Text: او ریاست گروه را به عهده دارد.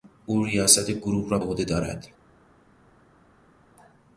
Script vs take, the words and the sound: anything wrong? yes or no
yes